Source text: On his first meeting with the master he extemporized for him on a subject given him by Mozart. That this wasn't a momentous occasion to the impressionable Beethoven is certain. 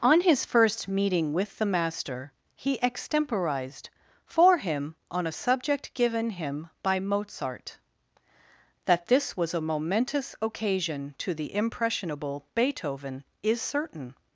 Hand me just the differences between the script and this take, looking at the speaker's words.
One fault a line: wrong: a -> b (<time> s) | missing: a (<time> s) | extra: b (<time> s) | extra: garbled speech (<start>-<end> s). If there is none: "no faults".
wrong: wasn't -> was (9.4 s)